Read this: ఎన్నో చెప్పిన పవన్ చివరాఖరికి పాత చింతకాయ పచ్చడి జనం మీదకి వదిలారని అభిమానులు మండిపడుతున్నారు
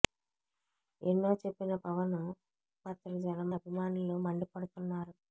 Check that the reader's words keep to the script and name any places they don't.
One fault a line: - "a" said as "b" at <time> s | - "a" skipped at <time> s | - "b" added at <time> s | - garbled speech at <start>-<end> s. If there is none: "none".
- "చివరాఖరికి పాత చింతకాయ" skipped at 2.1 s
- "మీదకి వదిలారని" skipped at 3.5 s